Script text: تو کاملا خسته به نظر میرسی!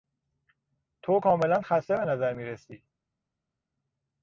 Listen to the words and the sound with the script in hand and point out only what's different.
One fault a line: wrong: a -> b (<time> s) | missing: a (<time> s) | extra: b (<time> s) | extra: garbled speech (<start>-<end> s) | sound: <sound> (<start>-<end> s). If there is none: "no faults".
no faults